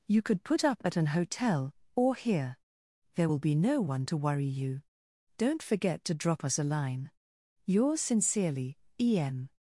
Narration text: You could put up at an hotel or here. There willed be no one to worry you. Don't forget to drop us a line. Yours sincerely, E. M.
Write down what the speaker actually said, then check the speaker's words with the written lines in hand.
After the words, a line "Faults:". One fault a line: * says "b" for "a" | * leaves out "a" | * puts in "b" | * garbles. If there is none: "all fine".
You could put up at an hotel or here. There will be no one to worry you. Don't forget to drop us a line. Yours sincerely, E. M.
Faults:
* says "will" for "willed"